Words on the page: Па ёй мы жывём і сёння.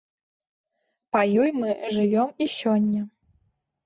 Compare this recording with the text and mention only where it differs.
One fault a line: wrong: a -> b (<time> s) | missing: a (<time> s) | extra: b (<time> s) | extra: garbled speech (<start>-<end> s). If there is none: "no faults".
no faults